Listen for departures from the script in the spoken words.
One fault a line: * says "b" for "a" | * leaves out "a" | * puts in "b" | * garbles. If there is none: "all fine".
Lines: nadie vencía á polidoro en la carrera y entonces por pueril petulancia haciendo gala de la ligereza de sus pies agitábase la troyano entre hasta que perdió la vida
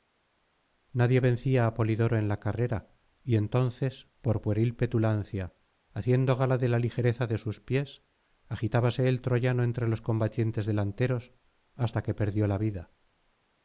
* says "el" for "la"
* puts in "los combatientes delanteros"